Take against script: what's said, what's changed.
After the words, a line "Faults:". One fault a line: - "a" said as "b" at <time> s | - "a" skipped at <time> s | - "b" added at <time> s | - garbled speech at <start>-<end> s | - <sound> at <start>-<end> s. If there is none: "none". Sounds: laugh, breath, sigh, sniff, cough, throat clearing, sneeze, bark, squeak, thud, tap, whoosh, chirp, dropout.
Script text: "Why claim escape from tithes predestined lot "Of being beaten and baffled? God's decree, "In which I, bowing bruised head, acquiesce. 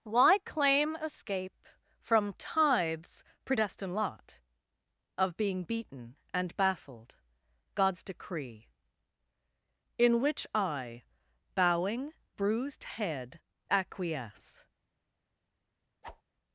"Why claim escape from tithes predestined lot "Of being beaten and baffled? God's decree, "In which I, bowing bruised head, acquiesce.
Faults:
- whoosh at 16.0-16.2 s